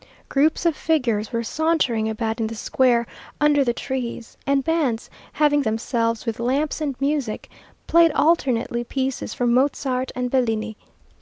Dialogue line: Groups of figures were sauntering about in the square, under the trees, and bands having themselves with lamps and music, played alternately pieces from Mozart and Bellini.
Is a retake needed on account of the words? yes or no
no